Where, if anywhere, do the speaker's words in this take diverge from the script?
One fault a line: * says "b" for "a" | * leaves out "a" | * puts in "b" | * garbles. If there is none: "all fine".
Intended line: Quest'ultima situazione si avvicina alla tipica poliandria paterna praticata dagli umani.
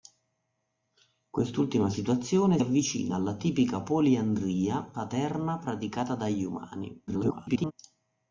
* leaves out "si"
* garbles